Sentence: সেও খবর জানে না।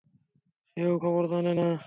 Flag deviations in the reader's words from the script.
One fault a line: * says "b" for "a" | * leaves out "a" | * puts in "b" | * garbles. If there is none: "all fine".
all fine